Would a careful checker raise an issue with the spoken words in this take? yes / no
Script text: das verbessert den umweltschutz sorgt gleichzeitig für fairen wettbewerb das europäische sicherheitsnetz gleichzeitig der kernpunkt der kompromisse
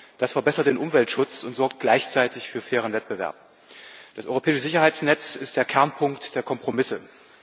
yes